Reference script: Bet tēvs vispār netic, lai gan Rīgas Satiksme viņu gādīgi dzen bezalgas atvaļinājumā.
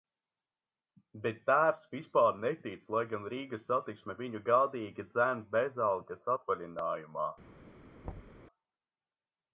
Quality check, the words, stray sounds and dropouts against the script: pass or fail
fail